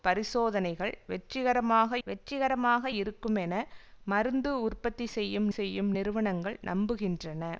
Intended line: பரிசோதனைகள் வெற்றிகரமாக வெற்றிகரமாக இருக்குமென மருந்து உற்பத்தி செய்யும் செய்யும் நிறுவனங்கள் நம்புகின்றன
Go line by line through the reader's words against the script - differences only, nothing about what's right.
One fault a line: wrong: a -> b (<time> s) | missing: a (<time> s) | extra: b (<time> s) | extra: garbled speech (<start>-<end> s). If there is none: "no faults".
no faults